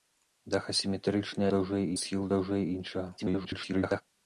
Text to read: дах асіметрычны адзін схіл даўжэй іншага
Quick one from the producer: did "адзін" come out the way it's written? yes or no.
no